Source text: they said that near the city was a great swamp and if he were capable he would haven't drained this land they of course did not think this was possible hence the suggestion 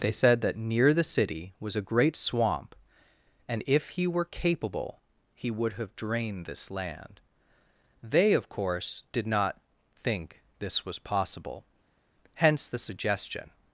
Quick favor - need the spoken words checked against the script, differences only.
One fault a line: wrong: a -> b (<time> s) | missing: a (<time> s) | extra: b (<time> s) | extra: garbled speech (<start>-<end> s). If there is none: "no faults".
wrong: haven't -> have (5.7 s)